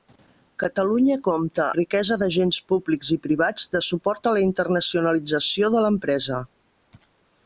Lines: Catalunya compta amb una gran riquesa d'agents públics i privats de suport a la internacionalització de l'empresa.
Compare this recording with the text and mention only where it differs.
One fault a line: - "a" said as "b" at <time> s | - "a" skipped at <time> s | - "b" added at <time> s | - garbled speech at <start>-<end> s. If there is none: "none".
- "amb una gran" skipped at 1.6 s